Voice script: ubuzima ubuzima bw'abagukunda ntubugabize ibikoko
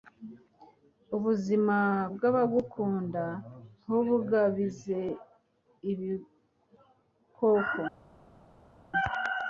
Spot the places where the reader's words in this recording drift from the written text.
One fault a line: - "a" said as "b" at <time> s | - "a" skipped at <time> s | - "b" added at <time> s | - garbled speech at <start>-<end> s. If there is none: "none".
- "ubuzima" skipped at 1.8 s